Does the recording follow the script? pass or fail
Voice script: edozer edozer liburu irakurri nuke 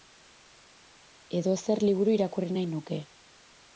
fail